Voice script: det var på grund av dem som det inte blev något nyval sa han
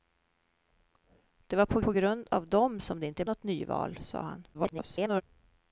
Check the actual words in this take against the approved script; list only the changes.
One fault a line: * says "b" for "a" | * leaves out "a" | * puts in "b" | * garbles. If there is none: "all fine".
* puts in "på"
* leaves out "blev"
* garbles